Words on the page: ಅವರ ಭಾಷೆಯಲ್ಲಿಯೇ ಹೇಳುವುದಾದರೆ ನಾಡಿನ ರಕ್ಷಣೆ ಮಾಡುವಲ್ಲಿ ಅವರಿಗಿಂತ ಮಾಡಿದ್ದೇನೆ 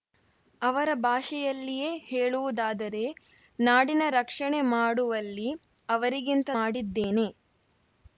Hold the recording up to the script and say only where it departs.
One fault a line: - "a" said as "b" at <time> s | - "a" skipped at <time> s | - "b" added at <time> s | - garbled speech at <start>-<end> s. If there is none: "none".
none